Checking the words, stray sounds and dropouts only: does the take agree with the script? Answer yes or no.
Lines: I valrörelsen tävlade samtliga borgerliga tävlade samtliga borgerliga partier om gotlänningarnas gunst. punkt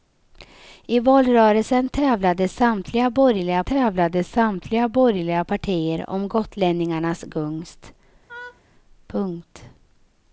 no